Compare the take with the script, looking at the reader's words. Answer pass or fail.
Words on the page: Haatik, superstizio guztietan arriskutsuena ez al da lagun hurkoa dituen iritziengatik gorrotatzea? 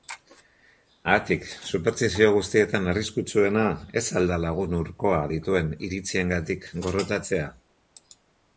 pass